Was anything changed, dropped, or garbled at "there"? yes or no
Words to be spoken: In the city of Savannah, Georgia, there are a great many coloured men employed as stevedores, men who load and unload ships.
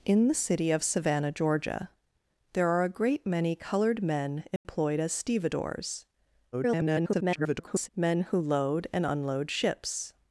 no